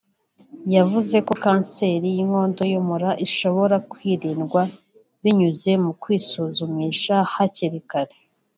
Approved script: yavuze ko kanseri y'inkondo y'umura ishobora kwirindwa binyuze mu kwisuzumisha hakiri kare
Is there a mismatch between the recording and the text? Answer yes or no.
no